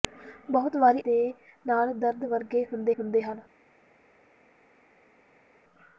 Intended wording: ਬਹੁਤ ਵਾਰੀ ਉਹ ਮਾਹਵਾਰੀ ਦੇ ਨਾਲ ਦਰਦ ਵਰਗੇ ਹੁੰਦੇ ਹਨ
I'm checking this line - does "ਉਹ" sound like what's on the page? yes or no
no